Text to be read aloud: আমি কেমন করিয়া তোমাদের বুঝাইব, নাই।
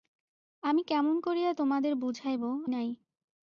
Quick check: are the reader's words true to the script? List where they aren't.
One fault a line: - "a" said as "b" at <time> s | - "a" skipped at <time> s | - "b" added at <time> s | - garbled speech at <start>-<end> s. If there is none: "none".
none